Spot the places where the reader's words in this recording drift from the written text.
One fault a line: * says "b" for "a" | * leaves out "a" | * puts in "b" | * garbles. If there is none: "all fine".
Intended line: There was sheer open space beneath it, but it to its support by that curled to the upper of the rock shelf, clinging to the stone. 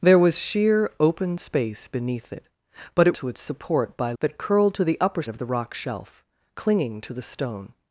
all fine